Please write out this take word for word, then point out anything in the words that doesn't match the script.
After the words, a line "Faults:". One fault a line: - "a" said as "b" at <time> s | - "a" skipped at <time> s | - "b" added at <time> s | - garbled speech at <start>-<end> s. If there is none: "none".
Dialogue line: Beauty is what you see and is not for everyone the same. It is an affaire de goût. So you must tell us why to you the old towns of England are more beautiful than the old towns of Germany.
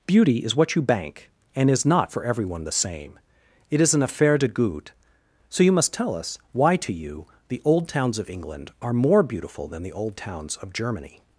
Beauty is what you bank and is not for everyone the same. It is an affaire de goût. So you must tell us why to you the old towns of England are more beautiful than the old towns of Germany.
Faults:
- "see" said as "bank" at 0.8 s